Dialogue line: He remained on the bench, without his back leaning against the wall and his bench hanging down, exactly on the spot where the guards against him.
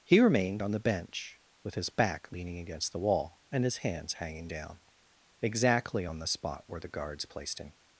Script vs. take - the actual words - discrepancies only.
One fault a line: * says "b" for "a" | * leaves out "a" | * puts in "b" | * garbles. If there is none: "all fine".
* says "with" for "without"
* says "hands" for "bench"
* says "placed" for "against"